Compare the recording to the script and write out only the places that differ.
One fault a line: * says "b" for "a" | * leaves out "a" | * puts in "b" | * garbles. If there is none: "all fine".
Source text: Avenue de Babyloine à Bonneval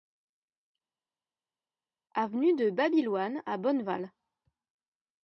all fine